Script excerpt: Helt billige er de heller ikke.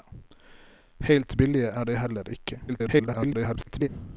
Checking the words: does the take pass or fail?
fail